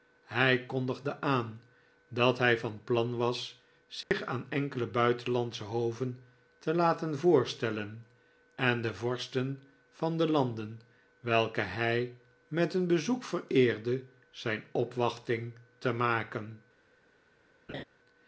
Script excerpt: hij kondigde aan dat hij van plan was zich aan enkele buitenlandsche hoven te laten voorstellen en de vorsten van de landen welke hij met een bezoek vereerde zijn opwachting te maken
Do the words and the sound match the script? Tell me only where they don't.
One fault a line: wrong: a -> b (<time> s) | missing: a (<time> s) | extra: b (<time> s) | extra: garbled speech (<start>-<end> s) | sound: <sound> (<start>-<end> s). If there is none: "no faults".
sound: dropout (4.0-4.1 s)
sound: laugh (17.7-17.8 s)